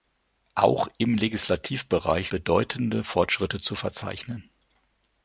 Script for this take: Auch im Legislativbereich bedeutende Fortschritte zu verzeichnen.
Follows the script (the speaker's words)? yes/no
yes